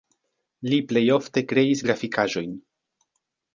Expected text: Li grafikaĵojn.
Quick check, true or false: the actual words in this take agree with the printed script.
false